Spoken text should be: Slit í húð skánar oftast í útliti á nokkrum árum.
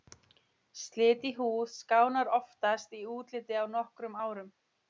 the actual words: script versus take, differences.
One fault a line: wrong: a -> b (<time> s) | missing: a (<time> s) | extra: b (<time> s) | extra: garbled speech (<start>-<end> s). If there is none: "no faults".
no faults